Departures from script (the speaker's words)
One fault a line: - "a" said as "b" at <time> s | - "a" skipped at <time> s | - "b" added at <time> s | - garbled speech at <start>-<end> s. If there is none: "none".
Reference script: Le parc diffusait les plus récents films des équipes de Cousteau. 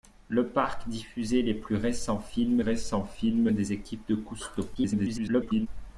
- "récents films" added at 2.6 s
- garbled speech at 4.7-5.7 s